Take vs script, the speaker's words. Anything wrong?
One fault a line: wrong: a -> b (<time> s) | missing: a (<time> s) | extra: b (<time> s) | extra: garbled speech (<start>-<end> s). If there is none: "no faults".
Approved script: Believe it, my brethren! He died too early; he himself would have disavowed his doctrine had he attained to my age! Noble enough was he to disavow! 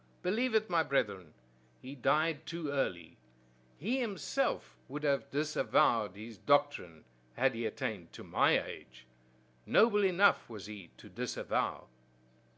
no faults